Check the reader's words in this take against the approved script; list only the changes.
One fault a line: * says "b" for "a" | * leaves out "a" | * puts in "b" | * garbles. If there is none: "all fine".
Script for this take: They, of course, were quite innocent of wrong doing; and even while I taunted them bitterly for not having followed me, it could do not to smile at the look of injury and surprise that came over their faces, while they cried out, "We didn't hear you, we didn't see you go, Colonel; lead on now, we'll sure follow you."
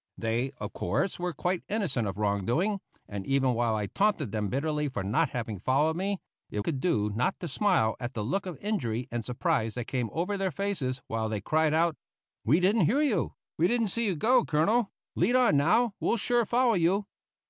all fine